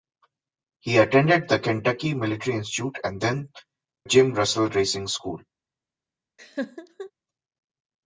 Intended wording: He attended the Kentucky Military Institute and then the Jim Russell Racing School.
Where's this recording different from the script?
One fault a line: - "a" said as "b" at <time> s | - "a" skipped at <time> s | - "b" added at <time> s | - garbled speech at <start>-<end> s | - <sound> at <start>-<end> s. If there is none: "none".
- "the" skipped at 3.5 s
- laugh at 6.4-7.1 s